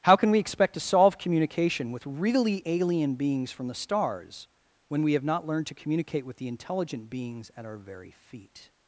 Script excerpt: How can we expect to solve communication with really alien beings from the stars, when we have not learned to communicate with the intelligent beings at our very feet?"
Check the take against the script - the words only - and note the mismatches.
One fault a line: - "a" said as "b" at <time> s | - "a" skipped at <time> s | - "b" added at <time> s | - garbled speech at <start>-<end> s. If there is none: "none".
none